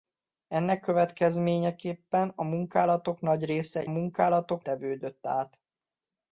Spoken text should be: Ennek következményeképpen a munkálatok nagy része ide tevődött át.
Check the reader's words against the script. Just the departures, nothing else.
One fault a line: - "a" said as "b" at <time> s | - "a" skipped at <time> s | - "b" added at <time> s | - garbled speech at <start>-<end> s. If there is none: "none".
- "ide" said as "munkálatok" at 3.9 s